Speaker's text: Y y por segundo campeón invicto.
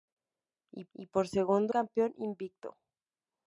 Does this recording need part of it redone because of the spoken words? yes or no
no